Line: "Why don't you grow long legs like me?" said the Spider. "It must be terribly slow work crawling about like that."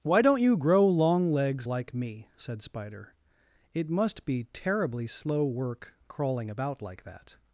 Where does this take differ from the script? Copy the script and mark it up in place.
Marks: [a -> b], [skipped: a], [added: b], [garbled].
"Why don't you grow long legs like me?" said [skipped: the] Spider. "It must be terribly slow work crawling about like that."